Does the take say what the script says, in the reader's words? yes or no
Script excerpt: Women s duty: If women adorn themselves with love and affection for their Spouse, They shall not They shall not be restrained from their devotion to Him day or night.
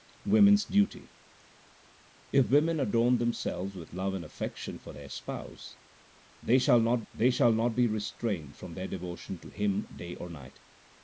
yes